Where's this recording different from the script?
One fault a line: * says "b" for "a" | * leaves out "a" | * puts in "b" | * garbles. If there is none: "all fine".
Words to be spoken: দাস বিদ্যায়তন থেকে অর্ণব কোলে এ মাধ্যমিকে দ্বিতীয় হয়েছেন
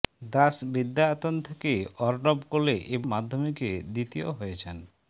all fine